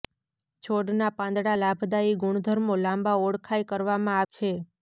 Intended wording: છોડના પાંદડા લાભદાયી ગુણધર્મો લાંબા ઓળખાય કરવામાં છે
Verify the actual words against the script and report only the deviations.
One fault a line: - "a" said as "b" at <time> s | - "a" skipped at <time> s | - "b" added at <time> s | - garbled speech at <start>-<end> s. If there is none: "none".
none